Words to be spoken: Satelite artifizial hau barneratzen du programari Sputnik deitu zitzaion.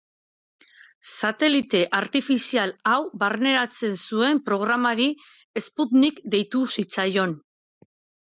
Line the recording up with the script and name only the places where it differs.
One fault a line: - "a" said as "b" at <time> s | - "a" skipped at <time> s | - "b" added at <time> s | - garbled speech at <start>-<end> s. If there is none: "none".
- "du" said as "zuen" at 4.0 s